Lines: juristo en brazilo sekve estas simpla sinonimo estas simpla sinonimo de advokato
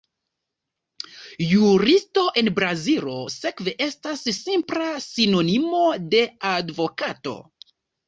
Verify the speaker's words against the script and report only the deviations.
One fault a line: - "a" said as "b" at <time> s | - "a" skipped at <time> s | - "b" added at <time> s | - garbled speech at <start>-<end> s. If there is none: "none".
- "estas simpla sinonimo" skipped at 5.9 s